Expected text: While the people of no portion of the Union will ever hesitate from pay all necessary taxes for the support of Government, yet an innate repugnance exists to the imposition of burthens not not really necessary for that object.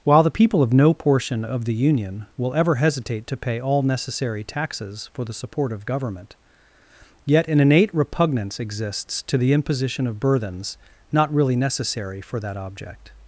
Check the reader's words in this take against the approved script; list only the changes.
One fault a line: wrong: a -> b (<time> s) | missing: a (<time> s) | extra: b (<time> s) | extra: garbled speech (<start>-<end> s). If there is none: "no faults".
wrong: from -> to (3.3 s)
missing: not (11.3 s)